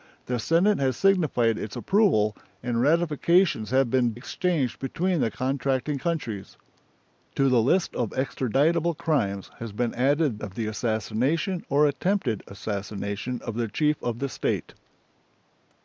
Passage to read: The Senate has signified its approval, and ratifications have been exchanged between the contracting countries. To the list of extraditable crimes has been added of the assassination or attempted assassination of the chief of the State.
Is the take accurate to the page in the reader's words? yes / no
yes